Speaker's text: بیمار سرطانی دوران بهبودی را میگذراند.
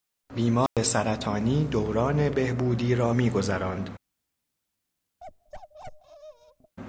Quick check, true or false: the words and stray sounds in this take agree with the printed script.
false